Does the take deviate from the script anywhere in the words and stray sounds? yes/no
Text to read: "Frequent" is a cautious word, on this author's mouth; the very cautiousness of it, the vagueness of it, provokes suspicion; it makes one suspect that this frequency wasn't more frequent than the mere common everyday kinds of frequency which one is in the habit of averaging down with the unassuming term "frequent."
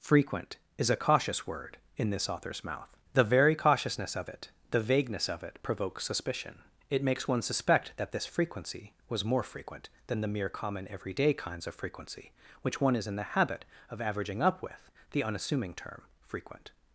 yes